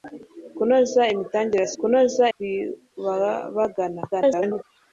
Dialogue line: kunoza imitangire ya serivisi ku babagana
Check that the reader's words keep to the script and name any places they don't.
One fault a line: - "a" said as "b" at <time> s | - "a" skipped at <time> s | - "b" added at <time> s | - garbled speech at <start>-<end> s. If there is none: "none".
- "serivisi" said as "kunoza" at 1.8 s
- garbled speech at 4.1-4.6 s